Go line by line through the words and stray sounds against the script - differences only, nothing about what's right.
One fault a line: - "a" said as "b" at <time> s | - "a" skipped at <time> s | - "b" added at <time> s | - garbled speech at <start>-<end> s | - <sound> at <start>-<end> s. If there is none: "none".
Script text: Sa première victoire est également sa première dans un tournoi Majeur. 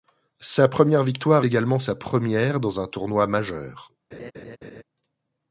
- "est" skipped at 1.4 s
- laugh at 4.1-4.8 s